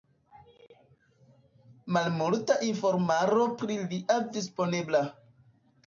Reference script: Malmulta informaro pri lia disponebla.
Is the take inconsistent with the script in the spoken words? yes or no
no